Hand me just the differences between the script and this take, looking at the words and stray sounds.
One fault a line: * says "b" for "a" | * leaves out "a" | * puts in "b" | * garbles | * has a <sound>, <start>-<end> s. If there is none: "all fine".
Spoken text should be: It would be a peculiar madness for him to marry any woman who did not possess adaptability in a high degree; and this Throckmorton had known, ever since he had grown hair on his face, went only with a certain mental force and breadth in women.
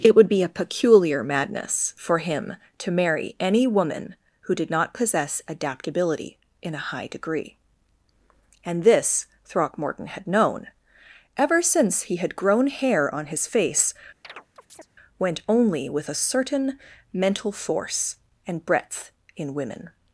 * has a chirp, 14.2-14.9 s